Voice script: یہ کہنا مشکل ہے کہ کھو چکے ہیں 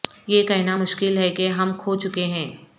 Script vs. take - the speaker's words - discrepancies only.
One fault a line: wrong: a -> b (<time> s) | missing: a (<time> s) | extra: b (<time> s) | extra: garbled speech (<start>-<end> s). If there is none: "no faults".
extra: ہم (1.5 s)